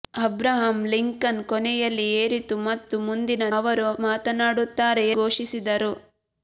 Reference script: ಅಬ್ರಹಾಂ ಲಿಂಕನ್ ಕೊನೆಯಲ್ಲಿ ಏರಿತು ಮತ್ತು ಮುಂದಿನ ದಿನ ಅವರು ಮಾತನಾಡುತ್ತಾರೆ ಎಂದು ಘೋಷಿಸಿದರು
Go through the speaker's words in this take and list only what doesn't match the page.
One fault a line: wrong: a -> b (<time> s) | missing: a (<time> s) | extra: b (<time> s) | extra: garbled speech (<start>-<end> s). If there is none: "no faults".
missing: ದಿನ (3.4 s)
missing: ಎಂದು (5.1 s)